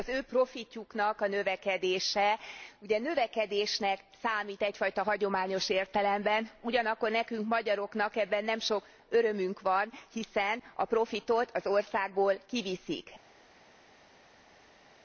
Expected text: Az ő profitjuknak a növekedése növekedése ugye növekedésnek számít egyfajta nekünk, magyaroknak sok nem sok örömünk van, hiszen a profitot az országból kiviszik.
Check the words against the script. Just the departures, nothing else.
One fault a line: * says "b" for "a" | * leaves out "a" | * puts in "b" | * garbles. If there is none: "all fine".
* leaves out "növekedése"
* puts in "hagyományos értelemben ugyanakkor"
* says "ebben" for "sok"